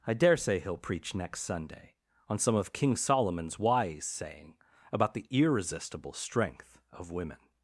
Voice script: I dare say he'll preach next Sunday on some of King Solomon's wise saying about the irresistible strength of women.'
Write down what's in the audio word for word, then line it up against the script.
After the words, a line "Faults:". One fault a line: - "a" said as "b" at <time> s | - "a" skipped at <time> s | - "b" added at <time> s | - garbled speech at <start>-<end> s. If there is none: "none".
I dare say he'll preach next Sunday on some of King Solomon's wise saying about the irresistible strength of women.'
Faults:
none